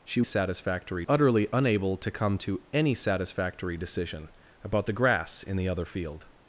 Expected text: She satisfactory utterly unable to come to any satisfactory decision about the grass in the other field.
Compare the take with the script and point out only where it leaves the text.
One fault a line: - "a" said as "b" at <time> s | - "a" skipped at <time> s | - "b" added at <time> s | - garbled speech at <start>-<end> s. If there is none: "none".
none